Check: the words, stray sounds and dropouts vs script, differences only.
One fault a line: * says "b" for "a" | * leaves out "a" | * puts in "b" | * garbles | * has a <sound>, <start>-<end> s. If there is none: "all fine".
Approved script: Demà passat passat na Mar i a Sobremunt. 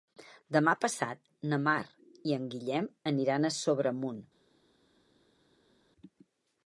* leaves out "passat"
* puts in "en Guillem aniran"